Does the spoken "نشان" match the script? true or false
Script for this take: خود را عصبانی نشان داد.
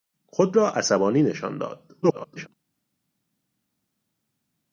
true